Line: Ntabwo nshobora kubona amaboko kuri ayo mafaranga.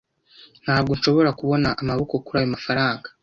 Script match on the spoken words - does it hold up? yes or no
yes